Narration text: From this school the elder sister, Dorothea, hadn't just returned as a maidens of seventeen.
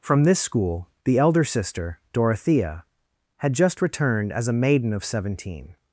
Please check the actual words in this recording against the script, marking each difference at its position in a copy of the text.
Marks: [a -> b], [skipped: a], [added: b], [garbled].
From this school the elder sister, Dorothea, [hadn't -> had] just returned as a [maidens -> maiden] of seventeen.